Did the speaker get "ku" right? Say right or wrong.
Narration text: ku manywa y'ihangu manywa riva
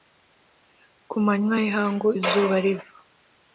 right